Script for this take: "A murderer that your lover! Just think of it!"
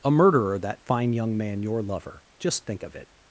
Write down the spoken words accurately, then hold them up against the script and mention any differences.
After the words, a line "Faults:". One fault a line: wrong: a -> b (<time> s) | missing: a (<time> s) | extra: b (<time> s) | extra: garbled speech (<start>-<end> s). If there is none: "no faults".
"A murderer that fine young man your lover! Just think of it!"
Faults:
extra: fine young man (0.8 s)